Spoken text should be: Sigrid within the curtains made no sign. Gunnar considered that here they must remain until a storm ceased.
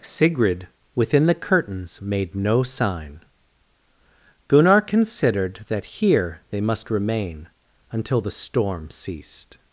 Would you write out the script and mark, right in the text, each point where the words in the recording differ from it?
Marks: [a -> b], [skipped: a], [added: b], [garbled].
Sigrid within the curtains made no sign. Gunnar considered that here they must remain until [a -> the] storm ceased.